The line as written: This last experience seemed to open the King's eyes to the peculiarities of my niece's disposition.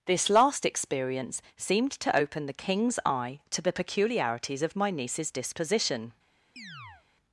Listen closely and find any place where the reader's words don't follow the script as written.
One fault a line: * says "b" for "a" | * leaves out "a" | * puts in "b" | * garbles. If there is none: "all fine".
* says "eye" for "eyes"